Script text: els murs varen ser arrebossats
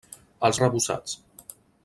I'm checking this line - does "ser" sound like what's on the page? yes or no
no